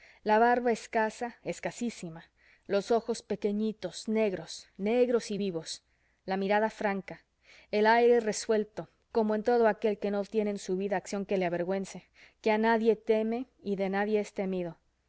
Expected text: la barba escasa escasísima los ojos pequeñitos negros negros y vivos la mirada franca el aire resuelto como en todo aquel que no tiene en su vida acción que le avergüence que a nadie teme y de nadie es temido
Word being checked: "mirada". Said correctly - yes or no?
yes